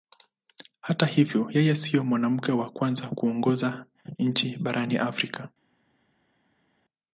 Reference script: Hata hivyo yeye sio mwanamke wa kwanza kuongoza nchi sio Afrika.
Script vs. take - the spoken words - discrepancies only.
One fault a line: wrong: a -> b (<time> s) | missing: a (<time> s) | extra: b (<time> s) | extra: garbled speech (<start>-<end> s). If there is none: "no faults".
wrong: sio -> barani (4.6 s)